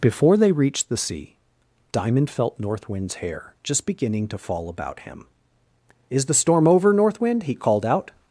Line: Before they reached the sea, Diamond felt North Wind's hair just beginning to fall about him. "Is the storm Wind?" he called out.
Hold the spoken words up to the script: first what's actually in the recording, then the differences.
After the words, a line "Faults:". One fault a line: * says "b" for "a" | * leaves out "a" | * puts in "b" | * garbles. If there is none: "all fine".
Before they reached the sea, Diamond felt North Wind's hair just beginning to fall about him. "Is the storm over, North Wind?" he called out.
Faults:
* puts in "over North"